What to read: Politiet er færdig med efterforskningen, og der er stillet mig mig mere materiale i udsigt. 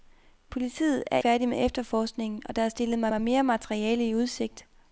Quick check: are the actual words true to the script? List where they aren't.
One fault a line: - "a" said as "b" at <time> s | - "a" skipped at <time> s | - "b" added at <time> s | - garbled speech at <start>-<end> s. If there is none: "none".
none